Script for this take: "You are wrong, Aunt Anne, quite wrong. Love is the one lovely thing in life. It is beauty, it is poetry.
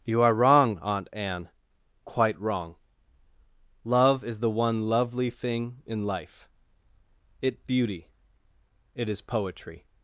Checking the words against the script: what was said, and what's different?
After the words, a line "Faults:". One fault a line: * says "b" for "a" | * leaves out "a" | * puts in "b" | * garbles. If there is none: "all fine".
"You are wrong, Aunt Anne, quite wrong. Love is the one lovely thing in life. It beauty, it is poetry.
Faults:
* leaves out "is"